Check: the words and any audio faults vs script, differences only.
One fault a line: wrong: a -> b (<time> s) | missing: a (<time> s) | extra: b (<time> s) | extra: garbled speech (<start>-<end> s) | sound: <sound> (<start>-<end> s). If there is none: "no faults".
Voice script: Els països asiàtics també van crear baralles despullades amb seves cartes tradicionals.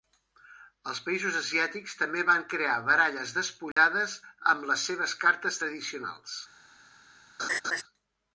sound: dropout (3.7-3.8 s)
extra: les (4.7 s)
sound: laugh (7.4-7.8 s)